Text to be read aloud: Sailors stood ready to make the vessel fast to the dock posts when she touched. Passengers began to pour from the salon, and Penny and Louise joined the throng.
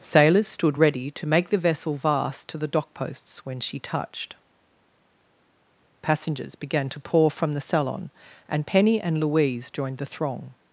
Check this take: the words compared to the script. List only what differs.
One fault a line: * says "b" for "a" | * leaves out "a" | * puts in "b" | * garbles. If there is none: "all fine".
* says "vast" for "fast"